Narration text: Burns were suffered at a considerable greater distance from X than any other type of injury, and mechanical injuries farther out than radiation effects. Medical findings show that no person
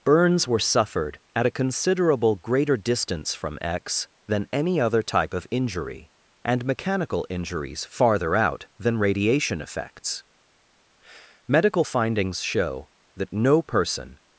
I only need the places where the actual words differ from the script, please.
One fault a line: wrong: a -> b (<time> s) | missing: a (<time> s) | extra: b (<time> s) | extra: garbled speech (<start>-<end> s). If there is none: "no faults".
no faults